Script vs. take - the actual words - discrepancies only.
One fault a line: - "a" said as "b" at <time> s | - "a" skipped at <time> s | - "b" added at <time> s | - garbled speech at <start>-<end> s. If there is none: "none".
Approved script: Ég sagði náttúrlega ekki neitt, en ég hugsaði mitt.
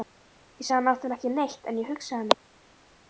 none